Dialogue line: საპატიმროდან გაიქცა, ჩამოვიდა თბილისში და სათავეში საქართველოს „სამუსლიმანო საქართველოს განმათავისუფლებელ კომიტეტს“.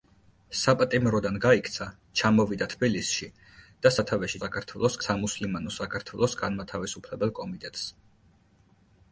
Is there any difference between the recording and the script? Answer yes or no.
no